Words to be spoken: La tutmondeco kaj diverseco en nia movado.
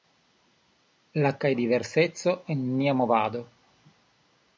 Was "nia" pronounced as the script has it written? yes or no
yes